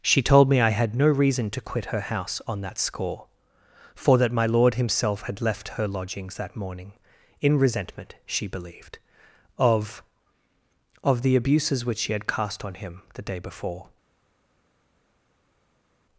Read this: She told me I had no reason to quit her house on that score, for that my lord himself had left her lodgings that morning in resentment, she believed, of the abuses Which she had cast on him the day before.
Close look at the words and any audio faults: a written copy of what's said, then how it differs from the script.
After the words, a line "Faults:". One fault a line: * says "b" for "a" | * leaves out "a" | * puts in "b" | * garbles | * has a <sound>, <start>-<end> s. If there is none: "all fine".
She told me I had no reason to quit her house on that score, for that my lord himself had left her lodgings that morning in resentment, she believed, of of the abuses Which she had cast on him the day before.
Faults:
* puts in "of"